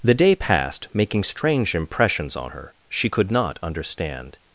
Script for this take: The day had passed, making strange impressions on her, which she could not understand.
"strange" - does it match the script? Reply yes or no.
yes